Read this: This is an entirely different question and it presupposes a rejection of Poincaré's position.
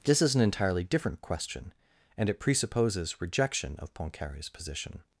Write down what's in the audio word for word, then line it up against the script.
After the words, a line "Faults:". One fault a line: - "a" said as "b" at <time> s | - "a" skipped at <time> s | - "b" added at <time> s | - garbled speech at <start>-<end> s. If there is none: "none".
This is an entirely different question and it presupposes rejection of Poincaré's position.
Faults:
- "a" skipped at 3.2 s